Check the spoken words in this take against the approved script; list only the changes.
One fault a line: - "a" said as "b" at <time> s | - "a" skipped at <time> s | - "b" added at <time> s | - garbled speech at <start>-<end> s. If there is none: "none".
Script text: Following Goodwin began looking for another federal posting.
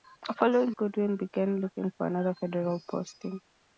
none